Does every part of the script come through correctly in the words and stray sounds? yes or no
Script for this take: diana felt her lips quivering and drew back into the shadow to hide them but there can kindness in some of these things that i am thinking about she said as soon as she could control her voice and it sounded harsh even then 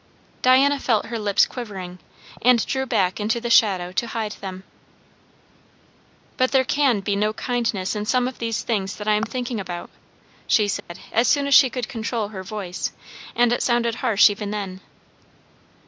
no